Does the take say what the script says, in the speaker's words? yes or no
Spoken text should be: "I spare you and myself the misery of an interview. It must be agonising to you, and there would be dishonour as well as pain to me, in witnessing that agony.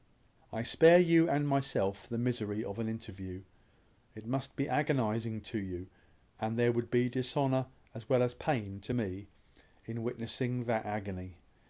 yes